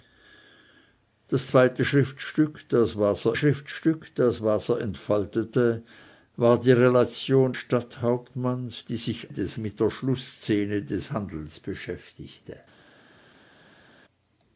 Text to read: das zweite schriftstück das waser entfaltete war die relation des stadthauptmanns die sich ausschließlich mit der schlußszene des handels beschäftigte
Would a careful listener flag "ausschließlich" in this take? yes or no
yes